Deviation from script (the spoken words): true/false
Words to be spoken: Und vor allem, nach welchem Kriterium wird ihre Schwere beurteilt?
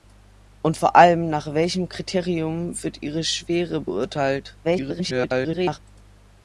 true